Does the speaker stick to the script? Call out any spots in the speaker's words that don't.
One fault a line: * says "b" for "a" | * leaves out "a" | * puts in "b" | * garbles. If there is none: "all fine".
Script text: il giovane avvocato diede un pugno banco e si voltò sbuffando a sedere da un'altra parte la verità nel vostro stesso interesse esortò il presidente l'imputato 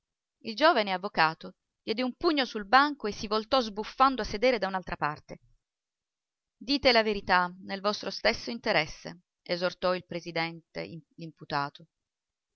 * puts in "sul"
* puts in "dite"